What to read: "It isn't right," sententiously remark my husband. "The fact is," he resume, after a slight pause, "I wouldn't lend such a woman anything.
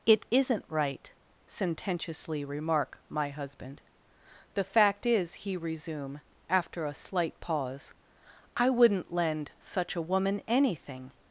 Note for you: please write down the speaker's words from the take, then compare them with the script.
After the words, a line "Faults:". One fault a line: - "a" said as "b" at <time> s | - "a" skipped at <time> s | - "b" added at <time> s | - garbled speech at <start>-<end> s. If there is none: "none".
"It isn't right," sententiously remark my husband. "The fact is," he resume, after a slight pause, "I wouldn't lend such a woman anything.
Faults:
none